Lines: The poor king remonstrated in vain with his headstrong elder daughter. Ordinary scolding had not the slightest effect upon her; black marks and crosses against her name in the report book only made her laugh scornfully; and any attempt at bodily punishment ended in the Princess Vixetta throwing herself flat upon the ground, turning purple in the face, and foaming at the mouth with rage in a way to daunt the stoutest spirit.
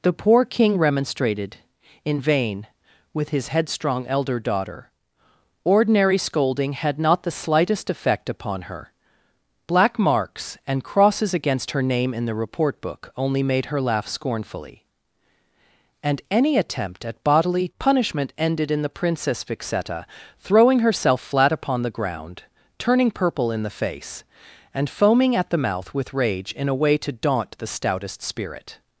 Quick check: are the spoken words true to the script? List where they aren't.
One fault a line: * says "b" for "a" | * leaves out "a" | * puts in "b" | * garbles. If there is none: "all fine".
all fine